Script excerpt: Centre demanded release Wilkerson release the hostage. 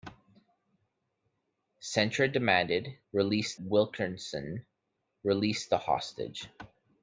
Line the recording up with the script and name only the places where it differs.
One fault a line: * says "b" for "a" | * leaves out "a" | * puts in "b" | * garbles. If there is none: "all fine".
all fine